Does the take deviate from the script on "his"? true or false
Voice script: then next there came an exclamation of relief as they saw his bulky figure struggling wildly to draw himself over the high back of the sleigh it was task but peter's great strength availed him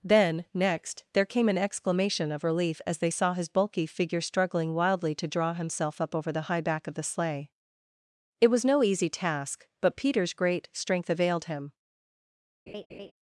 false